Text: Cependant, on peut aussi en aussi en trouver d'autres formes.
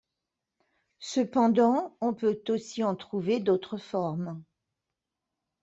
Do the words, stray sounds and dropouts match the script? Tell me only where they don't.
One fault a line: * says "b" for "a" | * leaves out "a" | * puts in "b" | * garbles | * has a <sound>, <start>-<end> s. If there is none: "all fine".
* leaves out "aussi en"